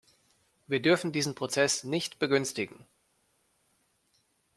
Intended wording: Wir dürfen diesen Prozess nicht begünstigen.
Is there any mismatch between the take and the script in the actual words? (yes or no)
no